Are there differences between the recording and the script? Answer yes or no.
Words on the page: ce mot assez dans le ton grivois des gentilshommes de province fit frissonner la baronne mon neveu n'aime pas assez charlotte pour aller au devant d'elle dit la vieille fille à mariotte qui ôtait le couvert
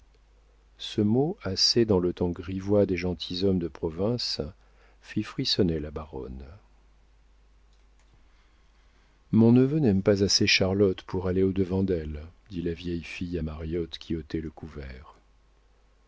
no